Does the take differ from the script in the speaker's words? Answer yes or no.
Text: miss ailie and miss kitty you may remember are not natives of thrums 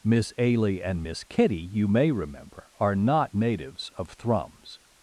no